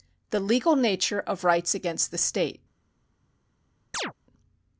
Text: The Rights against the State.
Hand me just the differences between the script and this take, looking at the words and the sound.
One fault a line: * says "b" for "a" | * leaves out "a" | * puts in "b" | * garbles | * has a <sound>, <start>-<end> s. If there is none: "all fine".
* puts in "Legal Nature of"
* has a chirp, 3.9-4.1 s